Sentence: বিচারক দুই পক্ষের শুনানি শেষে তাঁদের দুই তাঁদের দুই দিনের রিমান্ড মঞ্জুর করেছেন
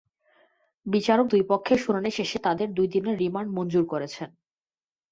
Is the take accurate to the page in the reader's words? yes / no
no